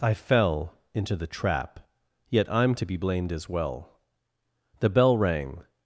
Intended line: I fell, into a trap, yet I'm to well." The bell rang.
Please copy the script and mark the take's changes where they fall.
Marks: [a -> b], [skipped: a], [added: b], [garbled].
I fell, into [a -> the] trap, yet I'm to [added: be blamed as] well." The bell rang.